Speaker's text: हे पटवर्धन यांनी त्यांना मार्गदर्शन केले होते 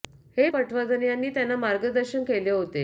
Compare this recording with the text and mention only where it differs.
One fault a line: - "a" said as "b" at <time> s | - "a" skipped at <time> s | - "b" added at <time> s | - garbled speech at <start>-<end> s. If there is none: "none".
none